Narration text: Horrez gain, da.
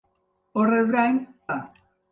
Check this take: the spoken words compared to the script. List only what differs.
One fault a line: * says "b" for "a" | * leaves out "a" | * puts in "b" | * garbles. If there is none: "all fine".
all fine